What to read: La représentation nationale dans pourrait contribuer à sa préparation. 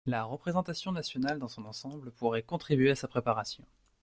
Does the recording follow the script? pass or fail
fail